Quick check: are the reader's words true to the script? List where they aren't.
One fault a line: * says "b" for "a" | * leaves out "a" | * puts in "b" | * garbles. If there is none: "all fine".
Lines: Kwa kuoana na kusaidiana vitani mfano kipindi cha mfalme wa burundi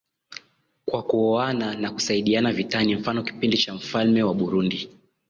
all fine